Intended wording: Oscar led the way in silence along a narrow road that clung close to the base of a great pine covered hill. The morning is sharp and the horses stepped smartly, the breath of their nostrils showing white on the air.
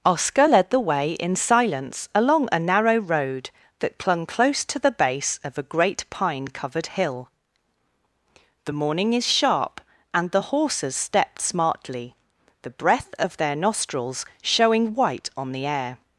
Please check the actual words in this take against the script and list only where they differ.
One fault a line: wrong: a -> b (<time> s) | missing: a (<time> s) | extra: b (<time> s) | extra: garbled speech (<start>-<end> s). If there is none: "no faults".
no faults